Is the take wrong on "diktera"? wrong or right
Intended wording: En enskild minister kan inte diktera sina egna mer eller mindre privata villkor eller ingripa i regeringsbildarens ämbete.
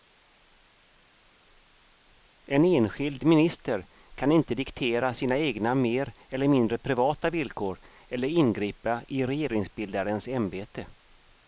right